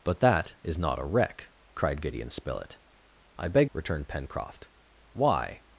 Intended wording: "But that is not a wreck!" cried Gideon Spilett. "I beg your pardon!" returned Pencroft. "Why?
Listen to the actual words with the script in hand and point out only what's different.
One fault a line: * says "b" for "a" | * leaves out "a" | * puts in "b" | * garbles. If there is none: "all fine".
* leaves out "your pardon"